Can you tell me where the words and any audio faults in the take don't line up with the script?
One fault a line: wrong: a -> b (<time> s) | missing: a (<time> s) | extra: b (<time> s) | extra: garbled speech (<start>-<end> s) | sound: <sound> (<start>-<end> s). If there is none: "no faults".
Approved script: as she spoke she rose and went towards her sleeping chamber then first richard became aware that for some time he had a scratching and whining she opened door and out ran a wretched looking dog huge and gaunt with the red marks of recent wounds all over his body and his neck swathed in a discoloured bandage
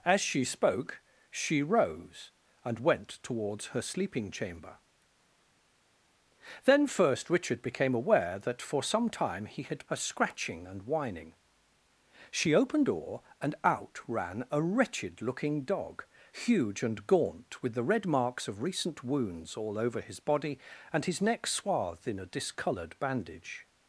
no faults